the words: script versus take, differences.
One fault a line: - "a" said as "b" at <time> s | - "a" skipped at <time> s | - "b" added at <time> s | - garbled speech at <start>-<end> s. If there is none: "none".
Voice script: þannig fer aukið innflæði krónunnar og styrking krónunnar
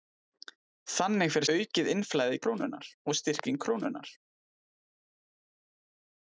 none